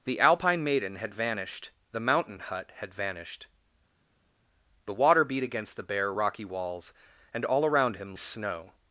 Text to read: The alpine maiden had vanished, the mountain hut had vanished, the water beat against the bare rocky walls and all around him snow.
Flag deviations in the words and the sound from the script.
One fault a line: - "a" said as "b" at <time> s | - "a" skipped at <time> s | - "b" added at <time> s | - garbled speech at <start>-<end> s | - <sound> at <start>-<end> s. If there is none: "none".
none